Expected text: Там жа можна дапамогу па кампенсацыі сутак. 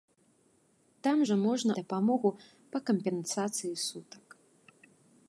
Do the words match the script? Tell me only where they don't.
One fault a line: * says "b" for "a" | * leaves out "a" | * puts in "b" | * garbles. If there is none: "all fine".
all fine